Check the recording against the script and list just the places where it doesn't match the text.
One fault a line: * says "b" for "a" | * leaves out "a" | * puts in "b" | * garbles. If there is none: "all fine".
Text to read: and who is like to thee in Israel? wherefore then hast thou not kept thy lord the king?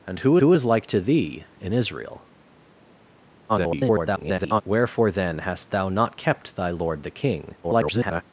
* puts in "who"
* garbles
* garbles